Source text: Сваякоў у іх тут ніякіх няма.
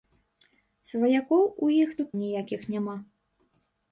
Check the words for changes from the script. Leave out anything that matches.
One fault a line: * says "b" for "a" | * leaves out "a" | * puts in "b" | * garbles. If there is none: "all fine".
all fine